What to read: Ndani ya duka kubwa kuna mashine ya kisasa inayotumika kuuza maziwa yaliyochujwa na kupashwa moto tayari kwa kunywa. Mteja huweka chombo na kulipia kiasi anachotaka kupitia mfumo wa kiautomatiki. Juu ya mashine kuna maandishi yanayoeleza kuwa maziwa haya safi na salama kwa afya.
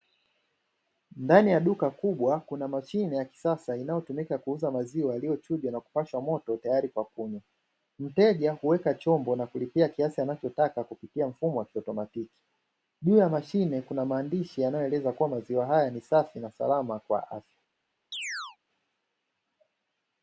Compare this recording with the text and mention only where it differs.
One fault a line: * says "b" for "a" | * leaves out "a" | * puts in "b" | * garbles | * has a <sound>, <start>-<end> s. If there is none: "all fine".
* puts in "ni"
* has a chirp, 18.1-18.6 s